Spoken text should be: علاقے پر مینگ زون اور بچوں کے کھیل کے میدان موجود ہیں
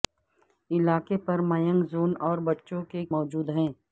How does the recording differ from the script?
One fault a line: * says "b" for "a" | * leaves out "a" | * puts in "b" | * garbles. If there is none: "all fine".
* leaves out "کھیل کے میدان"